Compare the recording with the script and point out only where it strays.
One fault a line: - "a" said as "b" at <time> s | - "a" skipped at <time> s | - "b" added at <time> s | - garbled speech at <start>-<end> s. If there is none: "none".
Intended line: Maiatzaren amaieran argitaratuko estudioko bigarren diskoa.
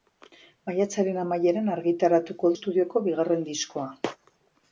none